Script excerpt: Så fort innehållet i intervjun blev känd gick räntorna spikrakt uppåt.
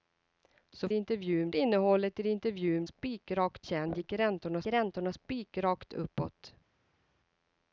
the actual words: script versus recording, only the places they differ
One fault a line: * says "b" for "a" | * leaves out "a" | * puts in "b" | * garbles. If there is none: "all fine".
* says "intervjun" for "fort"
* says "spikrakt" for "blev"
* puts in "räntorna"